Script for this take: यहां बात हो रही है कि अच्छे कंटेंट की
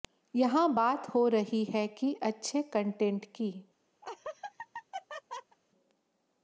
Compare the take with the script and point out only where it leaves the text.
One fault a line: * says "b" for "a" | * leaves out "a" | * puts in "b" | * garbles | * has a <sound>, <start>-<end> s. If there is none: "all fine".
* has a laugh, 4.0-5.6 s